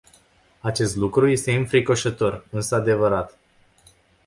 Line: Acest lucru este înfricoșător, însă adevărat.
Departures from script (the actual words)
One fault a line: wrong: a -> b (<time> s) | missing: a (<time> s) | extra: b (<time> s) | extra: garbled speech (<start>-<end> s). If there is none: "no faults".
no faults